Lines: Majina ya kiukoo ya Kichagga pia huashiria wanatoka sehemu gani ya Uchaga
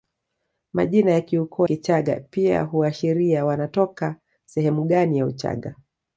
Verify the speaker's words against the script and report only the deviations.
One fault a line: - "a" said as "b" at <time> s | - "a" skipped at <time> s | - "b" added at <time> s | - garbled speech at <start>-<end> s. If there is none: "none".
- "ya" skipped at 1.7 s